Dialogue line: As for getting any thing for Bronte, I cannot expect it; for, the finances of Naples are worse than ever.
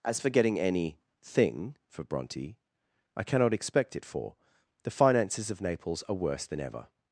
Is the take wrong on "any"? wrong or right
right